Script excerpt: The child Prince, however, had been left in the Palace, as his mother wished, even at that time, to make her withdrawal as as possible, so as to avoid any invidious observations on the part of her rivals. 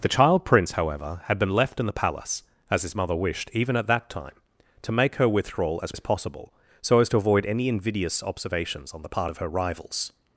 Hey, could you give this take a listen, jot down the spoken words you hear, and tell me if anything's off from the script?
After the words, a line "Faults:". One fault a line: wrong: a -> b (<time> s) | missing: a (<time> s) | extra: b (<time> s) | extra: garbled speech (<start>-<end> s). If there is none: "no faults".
The child Prince, however, had been left in the Palace, as his mother wished, even at that time, to make her withdrawal as as possible, so as to avoid any invidious observations on the part of her rivals.
Faults:
no faults